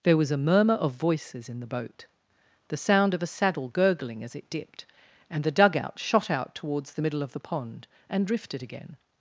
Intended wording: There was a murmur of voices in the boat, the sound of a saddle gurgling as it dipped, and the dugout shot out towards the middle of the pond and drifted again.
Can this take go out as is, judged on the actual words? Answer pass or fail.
pass